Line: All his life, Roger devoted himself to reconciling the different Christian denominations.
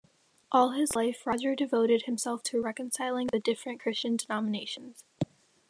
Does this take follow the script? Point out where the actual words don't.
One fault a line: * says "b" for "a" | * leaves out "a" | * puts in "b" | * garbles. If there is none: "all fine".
all fine